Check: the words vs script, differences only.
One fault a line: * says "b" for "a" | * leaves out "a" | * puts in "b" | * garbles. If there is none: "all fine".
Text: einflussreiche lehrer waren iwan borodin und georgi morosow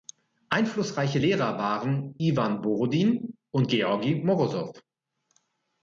all fine